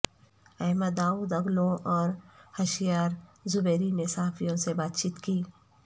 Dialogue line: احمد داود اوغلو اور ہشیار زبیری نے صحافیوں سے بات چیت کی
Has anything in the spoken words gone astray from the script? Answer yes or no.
no